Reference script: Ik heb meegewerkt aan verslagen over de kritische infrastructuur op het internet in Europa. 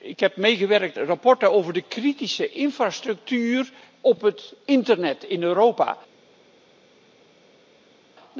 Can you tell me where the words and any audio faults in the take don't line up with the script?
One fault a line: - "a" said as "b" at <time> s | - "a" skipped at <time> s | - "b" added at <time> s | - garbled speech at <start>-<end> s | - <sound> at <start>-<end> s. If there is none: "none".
- "aan" skipped at 1.0 s